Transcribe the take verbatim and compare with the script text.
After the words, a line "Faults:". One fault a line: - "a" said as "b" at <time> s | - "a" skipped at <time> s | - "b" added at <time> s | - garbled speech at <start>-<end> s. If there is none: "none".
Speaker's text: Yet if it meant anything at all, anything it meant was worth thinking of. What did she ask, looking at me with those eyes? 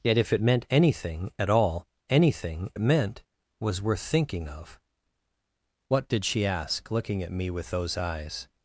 Yet if it meant anything at all, anything it meant was worth thinking of. What did she ask, looking at me with those eyes?
Faults:
none